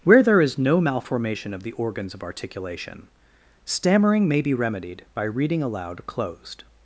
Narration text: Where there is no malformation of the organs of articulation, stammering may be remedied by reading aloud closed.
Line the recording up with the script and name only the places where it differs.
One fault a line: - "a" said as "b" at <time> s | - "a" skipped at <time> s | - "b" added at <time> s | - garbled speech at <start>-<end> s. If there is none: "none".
none